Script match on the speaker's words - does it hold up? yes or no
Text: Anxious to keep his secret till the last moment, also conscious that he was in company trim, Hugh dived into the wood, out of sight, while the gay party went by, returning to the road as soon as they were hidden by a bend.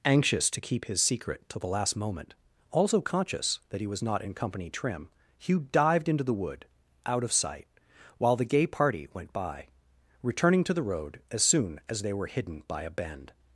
no